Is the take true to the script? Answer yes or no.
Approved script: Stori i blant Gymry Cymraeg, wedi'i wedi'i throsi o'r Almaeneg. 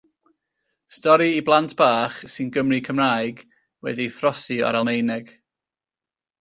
no